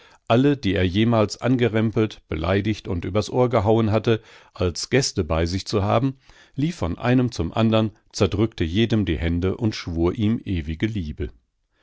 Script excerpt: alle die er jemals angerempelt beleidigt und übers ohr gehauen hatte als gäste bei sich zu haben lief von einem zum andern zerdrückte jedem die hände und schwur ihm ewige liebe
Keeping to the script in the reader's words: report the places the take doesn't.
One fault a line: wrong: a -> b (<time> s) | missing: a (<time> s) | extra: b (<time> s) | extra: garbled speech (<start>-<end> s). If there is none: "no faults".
no faults